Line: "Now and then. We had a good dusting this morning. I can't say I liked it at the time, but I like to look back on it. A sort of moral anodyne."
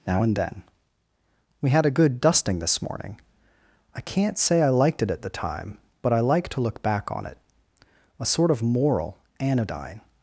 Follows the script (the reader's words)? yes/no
yes